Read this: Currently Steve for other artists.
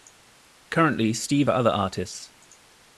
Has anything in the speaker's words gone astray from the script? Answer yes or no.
no